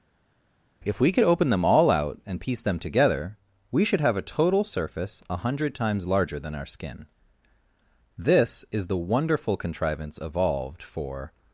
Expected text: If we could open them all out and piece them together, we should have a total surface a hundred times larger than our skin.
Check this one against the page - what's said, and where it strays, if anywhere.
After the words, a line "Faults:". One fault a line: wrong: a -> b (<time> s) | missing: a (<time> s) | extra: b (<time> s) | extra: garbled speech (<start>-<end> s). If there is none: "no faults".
If we could open them all out and piece them together, we should have a total surface a hundred times larger than our skin. This is the wonderful contrivance evolved for
Faults:
extra: This is the wonderful contrivance evolved for (8.2 s)